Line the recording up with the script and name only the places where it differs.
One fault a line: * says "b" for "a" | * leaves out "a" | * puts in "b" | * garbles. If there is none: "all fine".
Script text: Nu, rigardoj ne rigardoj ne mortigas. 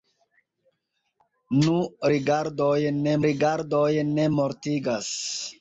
all fine